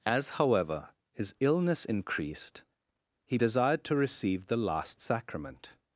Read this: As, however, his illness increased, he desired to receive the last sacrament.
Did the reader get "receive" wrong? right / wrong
right